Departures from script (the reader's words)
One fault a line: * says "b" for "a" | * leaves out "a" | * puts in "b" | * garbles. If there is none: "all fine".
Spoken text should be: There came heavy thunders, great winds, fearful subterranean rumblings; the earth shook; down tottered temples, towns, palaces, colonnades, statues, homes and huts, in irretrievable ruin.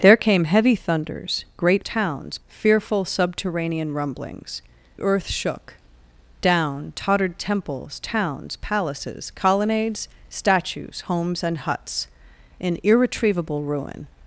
* says "towns" for "winds"
* leaves out "the"